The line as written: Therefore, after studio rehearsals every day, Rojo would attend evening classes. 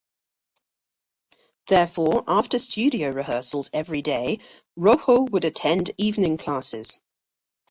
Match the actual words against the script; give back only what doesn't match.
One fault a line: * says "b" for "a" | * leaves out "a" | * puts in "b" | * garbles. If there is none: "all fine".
all fine